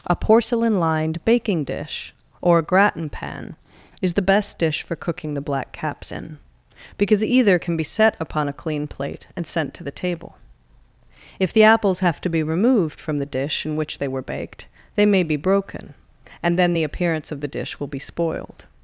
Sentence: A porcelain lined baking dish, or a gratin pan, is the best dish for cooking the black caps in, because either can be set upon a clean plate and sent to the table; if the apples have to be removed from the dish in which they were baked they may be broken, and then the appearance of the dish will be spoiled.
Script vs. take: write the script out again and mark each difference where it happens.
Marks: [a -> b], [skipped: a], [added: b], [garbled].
A porcelain lined baking dish, or a gratin pan, is the best dish for cooking the black caps in, because either can be set upon a clean plate and sent to the table; if the apples have to be removed from the dish in which they were baked they may be broken, and then the appearance of the dish will be spoiled.